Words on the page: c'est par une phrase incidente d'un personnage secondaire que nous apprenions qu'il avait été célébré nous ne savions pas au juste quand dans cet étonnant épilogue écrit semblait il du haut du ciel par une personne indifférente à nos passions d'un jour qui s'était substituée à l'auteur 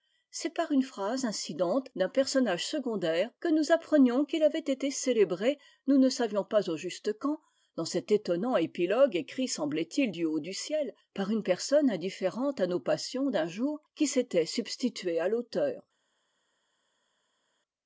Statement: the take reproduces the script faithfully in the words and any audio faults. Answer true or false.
true